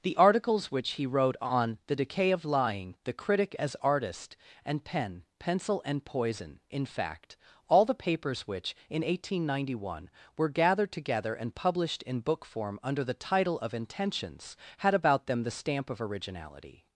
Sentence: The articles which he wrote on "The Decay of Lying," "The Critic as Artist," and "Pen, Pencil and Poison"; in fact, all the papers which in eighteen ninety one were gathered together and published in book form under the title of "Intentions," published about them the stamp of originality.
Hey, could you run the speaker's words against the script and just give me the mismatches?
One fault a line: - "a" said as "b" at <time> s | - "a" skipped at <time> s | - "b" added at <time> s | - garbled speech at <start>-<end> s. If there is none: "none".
- "published" said as "had" at 14.8 s